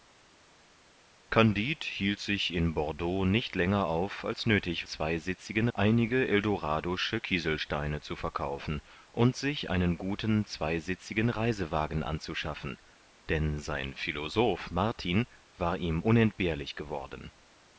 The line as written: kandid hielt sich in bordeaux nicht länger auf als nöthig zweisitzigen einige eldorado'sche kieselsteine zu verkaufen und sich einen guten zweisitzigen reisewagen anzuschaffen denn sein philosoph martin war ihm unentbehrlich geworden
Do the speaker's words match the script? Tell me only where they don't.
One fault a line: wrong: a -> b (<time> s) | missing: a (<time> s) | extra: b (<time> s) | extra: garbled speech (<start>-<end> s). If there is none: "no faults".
no faults